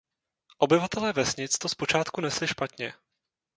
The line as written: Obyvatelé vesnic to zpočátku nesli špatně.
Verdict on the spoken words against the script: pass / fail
pass